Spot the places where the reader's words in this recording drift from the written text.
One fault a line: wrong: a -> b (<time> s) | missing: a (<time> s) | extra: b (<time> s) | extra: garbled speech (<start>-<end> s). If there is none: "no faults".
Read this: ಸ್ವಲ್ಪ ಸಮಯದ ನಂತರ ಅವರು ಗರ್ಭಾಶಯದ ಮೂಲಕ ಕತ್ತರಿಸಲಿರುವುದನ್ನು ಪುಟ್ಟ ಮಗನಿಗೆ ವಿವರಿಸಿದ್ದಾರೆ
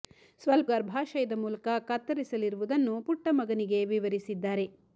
missing: ಸಮಯದ ನಂತರ ಅವರು (0.7 s)